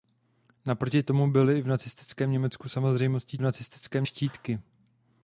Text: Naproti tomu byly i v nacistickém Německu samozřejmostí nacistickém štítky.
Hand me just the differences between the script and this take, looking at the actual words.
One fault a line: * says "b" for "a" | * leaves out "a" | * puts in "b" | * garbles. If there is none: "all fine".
all fine